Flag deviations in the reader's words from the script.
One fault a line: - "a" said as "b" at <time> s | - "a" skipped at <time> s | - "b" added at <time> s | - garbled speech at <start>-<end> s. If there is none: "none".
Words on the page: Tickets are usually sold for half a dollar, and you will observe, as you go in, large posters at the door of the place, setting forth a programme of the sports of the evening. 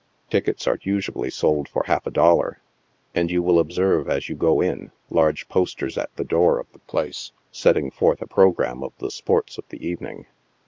none